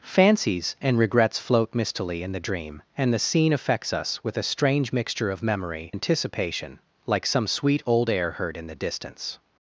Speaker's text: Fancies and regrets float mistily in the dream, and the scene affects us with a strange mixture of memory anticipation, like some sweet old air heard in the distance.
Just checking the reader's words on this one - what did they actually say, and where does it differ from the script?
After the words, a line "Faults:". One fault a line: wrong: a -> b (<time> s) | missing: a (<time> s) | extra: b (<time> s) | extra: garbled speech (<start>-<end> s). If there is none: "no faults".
Fancies and regrets float mistily in the dream, and the scene affects us with a strange mixture of memory anticipation, like some sweet old air heard in the distance.
Faults:
no faults